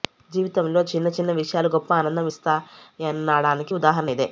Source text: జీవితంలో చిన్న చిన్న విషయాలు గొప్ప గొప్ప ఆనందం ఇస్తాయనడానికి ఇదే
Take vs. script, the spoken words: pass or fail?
fail